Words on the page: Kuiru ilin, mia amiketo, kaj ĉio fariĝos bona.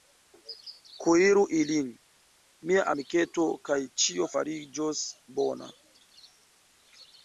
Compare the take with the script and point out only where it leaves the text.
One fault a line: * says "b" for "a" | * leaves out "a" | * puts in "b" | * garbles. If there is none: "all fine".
all fine